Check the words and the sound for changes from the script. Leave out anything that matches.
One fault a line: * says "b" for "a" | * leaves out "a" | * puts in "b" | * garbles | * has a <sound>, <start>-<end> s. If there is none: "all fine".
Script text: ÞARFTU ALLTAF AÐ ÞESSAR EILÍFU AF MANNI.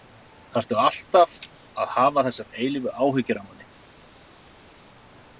* puts in "HAFA"
* puts in "ÁHYGGJUR"